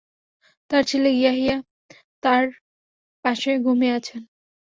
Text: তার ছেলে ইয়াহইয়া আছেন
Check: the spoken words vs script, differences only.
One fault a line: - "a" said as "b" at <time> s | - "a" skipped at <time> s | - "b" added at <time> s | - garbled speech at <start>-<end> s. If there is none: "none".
- "তার পাশে ঘুমিয়ে" added at 2.2 s